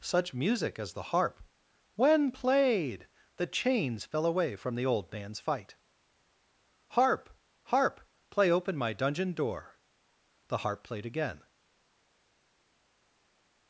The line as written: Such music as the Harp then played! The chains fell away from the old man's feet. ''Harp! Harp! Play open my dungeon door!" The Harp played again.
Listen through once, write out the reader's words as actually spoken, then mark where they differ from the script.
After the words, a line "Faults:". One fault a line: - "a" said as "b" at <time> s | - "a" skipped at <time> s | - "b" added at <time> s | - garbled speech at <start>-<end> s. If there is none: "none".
Such music as the Harp when played! The chains fell away from the old man's fight. ''Harp! Harp! Play open my dungeon door!" The Harp played again.
Faults:
- "then" said as "when" at 1.9 s
- "feet" said as "fight" at 5.4 s